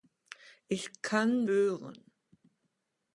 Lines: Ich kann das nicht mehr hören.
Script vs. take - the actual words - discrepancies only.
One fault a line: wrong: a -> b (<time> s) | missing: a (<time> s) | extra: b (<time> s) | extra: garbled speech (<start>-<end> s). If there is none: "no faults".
missing: das nicht mehr (1.4 s)